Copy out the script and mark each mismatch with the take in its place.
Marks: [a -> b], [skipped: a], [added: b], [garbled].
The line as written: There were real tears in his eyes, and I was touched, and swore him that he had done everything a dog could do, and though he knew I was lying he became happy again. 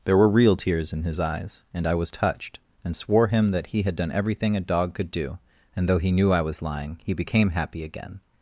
There were real tears in his eyes, and I was touched, and swore him that he had done everything a dog could do, and though he knew I was lying he became happy again.